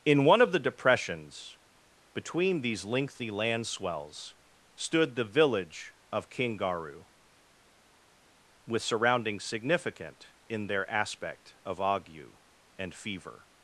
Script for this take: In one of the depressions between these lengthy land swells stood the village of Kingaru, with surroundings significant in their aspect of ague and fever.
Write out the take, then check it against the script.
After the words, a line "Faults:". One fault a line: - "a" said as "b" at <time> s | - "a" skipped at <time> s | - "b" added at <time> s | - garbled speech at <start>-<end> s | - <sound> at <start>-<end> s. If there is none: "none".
In one of the depressions between these lengthy land swells stood the village of Kingaru, with surroundings significant in their aspect of ague and fever.
Faults:
none